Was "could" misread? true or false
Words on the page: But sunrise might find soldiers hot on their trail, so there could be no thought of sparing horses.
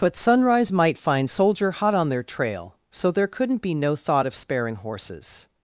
true